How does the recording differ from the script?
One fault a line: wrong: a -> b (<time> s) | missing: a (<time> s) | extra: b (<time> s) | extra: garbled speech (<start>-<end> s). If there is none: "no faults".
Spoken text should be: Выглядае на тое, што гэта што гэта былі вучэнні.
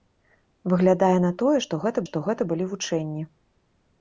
no faults